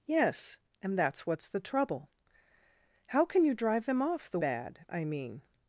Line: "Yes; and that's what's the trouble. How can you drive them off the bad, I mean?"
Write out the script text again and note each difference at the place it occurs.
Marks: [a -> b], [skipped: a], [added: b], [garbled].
"Yes; and that's what's the trouble. How can you drive them off the bad, I mean?"